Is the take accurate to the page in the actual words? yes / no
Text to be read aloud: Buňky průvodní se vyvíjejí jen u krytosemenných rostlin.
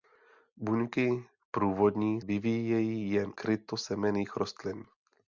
no